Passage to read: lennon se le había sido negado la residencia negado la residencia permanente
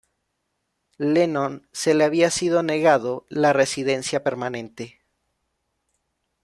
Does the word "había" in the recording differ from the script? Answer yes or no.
no